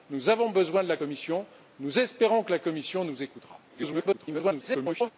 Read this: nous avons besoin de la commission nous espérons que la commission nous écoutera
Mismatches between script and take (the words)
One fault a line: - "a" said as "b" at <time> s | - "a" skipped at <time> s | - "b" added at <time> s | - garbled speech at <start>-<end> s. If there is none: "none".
- garbled speech at 3.7-5.1 s